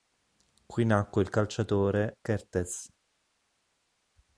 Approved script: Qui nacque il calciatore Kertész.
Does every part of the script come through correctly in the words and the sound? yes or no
yes